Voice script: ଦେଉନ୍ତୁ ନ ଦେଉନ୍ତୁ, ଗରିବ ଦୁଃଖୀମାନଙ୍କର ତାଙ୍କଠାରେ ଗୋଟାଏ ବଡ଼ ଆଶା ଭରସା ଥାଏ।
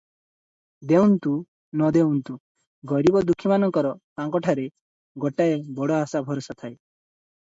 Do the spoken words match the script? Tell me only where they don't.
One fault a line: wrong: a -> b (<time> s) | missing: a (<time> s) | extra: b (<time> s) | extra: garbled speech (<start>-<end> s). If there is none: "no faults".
no faults